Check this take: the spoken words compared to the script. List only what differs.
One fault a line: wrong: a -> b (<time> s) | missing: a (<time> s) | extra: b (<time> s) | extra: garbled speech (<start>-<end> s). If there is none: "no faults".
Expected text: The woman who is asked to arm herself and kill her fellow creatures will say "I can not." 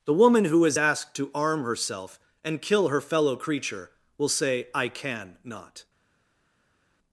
wrong: creatures -> creature (3.3 s)